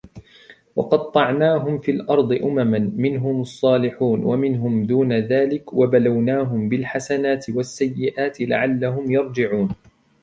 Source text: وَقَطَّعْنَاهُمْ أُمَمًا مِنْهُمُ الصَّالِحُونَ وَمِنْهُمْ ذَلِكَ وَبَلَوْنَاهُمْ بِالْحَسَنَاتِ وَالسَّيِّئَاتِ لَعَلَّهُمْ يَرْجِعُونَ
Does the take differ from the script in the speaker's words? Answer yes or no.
yes